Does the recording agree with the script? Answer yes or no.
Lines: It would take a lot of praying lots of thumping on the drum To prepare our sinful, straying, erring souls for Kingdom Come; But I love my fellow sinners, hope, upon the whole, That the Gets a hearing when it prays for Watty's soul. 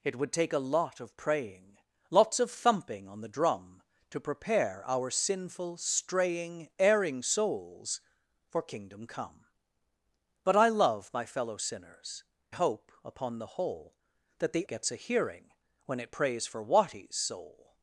yes